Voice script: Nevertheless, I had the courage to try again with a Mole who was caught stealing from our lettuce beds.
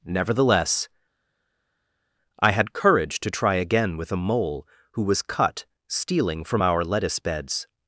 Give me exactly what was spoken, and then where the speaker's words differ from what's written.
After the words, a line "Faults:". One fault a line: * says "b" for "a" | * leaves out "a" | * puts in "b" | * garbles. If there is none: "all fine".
Nevertheless, I had courage to try again with a Mole who was cut stealing from our lettuce beds.
Faults:
* leaves out "the"
* says "cut" for "caught"